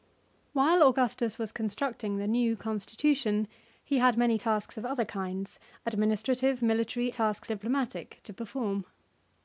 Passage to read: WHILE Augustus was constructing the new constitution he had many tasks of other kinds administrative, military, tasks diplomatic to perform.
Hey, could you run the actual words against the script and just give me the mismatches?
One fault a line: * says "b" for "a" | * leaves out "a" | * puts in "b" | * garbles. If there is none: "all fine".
all fine